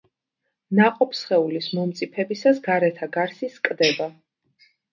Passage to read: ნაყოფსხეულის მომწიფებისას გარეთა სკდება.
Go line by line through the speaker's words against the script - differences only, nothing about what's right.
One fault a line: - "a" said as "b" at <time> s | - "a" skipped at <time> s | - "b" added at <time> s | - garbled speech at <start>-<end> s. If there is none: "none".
- "გარსი" added at 3.2 s